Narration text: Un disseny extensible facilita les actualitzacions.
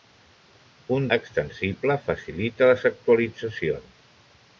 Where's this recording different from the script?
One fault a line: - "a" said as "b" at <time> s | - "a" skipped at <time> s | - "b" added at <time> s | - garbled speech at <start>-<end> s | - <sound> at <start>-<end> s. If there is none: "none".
- "disseny" skipped at 1.1 s